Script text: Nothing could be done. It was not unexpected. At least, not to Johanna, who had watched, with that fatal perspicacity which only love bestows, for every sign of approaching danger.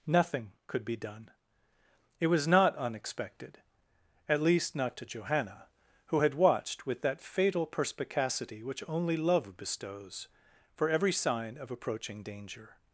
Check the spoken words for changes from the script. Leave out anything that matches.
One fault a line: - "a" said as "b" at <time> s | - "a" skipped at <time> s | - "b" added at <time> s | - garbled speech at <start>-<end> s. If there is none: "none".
none